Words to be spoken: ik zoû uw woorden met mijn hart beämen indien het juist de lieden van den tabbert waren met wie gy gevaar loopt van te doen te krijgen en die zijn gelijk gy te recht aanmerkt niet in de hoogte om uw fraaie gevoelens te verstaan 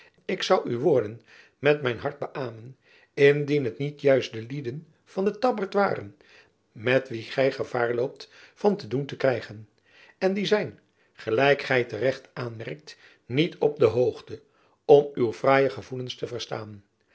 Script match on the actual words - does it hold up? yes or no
no